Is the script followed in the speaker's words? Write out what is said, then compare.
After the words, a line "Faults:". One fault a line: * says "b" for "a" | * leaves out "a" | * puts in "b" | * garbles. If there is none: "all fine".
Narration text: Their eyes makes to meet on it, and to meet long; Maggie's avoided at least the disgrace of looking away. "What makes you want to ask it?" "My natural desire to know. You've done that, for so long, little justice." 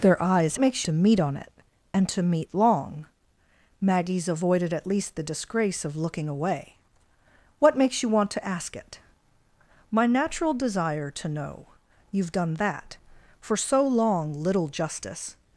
Their eyes makes to meet on it, and to meet long; Maggie's avoided at least the disgrace of looking away. "What makes you want to ask it?" "My natural desire to know. You've done that, for so long, little justice."
Faults:
all fine